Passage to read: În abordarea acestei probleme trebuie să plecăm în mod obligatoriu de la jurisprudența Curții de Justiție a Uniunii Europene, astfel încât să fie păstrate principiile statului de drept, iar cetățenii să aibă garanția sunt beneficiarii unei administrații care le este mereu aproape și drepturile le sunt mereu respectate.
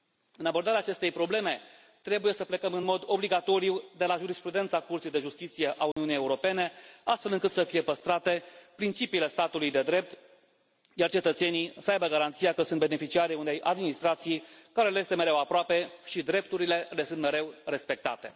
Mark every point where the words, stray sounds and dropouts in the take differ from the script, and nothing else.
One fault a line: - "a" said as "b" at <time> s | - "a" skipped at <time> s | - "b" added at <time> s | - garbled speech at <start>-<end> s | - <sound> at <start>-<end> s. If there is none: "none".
- dropout at 5.9-6.0 s
- "că" added at 12.5 s